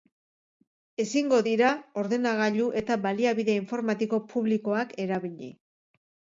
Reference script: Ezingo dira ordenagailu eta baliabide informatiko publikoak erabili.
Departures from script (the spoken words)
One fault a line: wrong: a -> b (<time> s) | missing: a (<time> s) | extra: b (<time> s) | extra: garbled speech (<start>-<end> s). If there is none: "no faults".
no faults